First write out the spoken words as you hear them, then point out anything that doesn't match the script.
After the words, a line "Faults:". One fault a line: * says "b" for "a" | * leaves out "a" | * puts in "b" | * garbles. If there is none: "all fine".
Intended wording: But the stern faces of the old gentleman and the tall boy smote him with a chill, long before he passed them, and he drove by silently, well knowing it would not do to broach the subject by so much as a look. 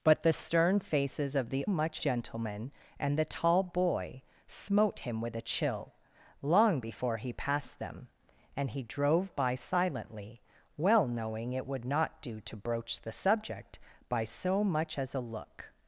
But the stern faces of the much gentleman and the tall boy smote him with a chill, long before he passed them, and he drove by silently, well knowing it would not do to broach the subject by so much as a look.
Faults:
* says "much" for "old"